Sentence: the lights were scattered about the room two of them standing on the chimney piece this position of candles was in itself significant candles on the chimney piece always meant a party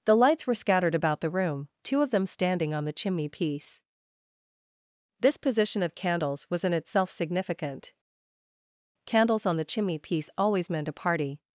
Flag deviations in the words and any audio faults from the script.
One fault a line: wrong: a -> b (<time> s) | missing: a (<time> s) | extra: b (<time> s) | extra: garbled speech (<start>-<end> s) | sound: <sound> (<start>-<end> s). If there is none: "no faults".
no faults